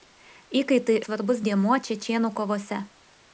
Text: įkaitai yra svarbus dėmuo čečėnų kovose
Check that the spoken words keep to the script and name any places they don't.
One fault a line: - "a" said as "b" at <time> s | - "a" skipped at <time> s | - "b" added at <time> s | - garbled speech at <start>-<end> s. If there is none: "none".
- "yra" skipped at 0.9 s